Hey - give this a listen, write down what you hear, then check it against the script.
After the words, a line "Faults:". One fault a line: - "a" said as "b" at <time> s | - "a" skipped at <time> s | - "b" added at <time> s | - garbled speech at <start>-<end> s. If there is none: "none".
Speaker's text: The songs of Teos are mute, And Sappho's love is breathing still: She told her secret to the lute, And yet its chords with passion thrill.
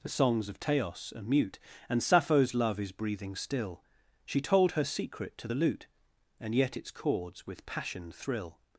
The songs of Teos are mute, And Sappho's love is breathing still: She told her secret to the lute, And yet its chords with passion thrill.
Faults:
none